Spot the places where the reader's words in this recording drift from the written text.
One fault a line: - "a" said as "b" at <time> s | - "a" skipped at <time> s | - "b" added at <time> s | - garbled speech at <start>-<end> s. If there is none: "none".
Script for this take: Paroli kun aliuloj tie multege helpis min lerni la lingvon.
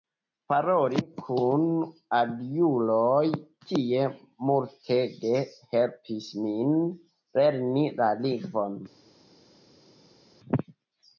none